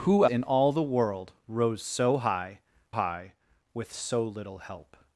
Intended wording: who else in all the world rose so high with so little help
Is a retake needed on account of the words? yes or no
yes